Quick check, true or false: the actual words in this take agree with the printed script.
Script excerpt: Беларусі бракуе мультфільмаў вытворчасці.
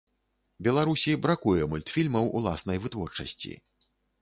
false